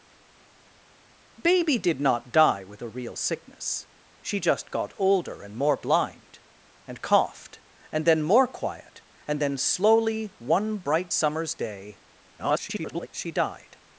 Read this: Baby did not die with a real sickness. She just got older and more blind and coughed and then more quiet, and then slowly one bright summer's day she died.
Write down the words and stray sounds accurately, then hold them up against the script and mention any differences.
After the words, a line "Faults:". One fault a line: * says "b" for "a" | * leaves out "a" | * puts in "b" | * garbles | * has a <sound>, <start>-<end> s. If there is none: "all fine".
Baby did not die with a real sickness. She just got older and more blind and coughed and then more quiet, and then slowly one bright summer's day [garbled] she died.
Faults:
* garbles